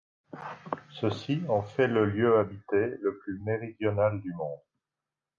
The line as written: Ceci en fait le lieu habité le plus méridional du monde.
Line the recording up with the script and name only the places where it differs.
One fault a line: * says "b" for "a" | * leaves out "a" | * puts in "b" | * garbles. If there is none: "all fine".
all fine